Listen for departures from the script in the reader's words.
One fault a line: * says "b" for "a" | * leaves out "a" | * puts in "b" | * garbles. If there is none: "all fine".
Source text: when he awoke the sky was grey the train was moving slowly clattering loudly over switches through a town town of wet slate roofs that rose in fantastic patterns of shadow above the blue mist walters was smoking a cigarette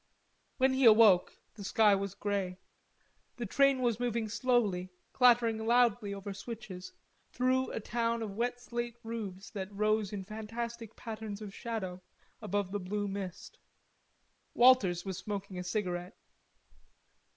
* leaves out "town"